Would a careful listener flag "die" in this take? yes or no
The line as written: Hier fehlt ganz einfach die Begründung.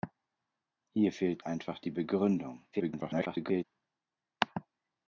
no